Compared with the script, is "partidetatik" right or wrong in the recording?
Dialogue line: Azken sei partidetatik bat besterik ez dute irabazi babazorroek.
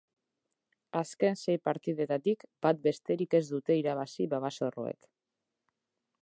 right